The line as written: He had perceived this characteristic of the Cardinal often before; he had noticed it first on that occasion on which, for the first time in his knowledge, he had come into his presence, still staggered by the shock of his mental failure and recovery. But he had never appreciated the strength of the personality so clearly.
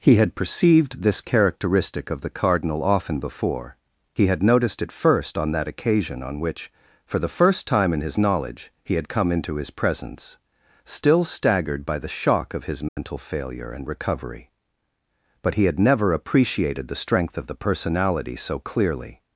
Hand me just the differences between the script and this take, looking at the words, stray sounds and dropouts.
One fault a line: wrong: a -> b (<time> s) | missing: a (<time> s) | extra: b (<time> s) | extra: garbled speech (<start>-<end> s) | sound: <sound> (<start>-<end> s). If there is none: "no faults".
sound: dropout (12.9-13.0 s)